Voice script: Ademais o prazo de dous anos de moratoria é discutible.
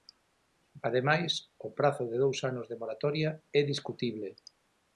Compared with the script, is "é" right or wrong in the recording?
right